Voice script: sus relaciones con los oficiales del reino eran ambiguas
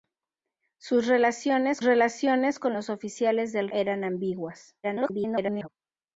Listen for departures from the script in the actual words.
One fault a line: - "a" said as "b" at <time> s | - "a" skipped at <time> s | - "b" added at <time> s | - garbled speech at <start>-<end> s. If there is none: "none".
- "relaciones" added at 1.8 s
- "reino" skipped at 3.7 s
- garbled speech at 4.8-5.7 s